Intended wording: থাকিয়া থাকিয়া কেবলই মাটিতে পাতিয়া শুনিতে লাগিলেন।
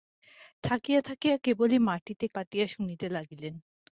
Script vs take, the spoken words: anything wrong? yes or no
no